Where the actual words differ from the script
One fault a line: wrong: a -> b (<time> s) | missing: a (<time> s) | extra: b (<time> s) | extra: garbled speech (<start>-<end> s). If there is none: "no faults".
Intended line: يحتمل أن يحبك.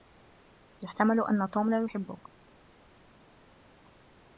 extra: توم لا (1.5 s)